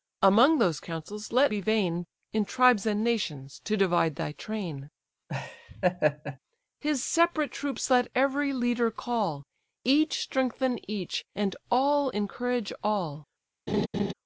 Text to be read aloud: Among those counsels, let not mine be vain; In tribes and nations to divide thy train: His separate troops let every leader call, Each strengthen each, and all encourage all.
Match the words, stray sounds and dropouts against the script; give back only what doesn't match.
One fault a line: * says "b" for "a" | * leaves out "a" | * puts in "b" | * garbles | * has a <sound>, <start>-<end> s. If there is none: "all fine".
* leaves out "not mine"
* has a laugh, 5.3-6.4 s
* has a laugh, 13.7-14.1 s